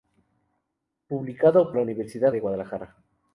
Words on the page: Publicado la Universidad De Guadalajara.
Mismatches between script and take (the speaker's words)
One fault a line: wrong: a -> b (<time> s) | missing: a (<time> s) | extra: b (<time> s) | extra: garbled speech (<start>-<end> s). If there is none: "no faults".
no faults